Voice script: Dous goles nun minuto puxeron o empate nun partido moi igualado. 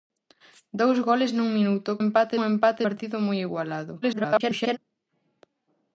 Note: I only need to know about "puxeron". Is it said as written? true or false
false